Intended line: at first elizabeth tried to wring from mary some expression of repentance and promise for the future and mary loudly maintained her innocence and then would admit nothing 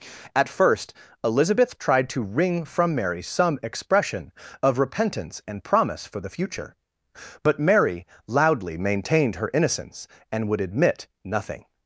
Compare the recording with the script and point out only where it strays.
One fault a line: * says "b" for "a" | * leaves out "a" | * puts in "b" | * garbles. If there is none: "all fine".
* says "but" for "and"
* leaves out "then"